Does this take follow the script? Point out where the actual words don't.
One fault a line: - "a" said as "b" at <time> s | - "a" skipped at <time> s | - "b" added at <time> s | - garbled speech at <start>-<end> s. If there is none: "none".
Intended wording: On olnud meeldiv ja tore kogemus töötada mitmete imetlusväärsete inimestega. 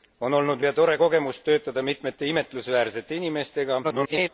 - "meeldiv" skipped at 0.6 s
- garbled speech at 3.8-4.3 s